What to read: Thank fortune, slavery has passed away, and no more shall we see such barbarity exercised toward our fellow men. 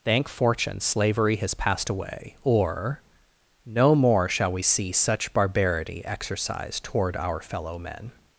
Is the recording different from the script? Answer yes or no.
yes